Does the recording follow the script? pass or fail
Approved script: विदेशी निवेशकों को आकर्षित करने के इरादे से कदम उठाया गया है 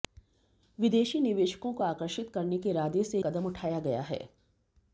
pass